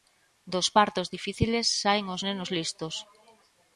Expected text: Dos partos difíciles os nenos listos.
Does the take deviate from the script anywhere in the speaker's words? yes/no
yes